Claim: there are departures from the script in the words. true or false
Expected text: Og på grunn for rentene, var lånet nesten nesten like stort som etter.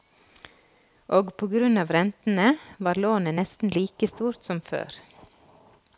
true